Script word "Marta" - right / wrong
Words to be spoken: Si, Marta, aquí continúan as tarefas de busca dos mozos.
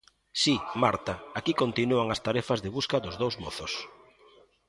right